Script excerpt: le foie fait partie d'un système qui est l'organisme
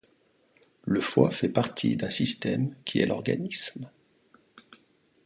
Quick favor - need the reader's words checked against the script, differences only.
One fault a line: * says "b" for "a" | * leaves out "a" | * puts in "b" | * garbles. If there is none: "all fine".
all fine